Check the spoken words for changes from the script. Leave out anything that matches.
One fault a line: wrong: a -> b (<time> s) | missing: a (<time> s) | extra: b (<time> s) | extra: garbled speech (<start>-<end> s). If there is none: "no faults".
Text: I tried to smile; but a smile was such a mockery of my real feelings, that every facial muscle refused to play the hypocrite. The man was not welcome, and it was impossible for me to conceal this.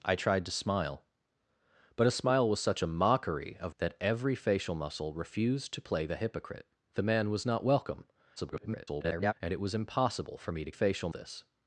missing: my real feelings (3.8 s)
extra: garbled speech (8.4-9.3 s)
wrong: conceal -> facial (10.7 s)